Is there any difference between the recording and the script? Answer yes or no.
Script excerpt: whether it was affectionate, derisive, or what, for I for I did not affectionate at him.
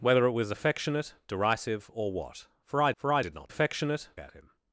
no